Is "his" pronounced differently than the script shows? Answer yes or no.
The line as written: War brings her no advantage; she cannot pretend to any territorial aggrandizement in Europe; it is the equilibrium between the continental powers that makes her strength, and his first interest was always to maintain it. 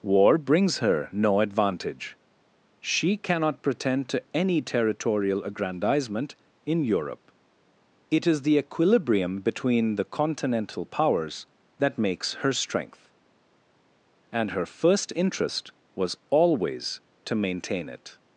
yes